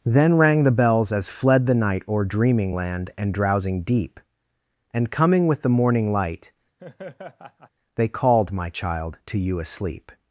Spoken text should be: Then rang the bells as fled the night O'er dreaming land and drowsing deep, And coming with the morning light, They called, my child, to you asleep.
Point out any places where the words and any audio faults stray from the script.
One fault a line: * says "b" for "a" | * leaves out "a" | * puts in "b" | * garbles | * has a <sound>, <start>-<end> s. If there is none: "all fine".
* has a laugh, 6.8-7.7 s